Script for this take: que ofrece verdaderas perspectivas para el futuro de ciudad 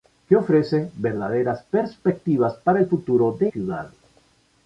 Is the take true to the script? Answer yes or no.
yes